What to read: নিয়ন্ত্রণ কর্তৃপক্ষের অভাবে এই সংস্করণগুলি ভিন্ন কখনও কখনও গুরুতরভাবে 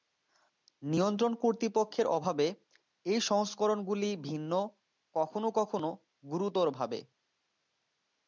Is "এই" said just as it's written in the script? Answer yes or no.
yes